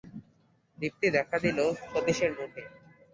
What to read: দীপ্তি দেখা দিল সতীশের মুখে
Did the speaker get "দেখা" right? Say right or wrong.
right